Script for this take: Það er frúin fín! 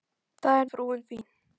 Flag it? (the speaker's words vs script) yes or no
no